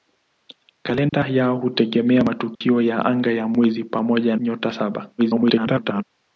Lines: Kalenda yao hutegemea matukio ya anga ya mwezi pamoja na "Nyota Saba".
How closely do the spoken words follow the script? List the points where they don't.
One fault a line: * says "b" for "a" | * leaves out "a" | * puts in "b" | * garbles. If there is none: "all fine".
* leaves out "na"
* garbles